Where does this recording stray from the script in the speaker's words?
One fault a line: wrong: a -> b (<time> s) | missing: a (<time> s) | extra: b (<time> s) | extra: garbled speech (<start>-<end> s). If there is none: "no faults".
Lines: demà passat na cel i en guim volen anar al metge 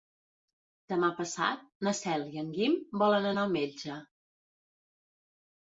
no faults